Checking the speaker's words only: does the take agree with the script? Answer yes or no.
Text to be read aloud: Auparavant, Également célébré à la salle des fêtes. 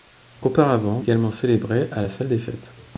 yes